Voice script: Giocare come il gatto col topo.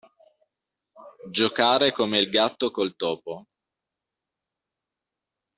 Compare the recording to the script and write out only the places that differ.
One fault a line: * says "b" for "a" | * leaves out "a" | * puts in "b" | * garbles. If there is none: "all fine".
all fine